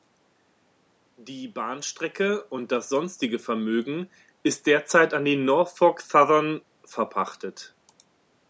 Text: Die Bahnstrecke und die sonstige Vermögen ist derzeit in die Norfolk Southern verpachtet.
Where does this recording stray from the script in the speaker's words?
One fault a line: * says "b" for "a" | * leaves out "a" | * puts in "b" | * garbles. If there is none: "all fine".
* says "das" for "die"
* says "an" for "in"